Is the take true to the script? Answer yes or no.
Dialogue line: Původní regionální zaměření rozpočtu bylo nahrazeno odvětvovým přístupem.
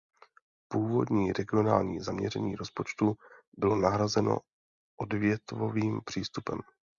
yes